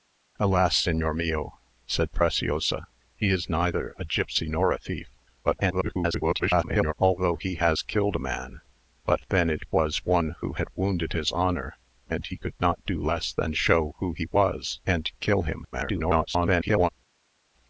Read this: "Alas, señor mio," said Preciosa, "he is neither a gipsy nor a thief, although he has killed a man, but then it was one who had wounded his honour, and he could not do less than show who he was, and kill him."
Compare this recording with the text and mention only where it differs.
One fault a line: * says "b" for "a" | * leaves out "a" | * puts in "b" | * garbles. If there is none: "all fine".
* garbles
* garbles